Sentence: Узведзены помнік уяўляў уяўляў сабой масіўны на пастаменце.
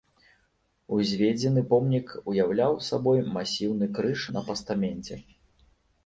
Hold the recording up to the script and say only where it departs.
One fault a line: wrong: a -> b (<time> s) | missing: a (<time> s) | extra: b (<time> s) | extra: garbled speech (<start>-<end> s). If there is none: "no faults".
missing: уяўляў (2.8 s)
extra: крыж (4.0 s)